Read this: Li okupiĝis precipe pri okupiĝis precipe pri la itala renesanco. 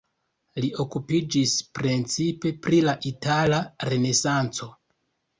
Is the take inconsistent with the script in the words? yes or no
yes